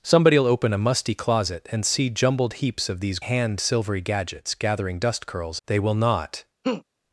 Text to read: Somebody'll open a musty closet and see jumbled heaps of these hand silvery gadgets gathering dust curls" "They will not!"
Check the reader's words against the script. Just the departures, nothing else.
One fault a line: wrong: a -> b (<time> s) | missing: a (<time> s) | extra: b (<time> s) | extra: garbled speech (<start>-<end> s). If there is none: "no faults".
no faults